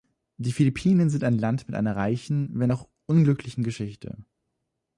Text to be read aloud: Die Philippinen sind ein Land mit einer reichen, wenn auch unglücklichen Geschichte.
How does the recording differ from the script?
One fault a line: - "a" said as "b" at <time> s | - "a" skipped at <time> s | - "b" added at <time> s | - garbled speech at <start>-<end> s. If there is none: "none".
none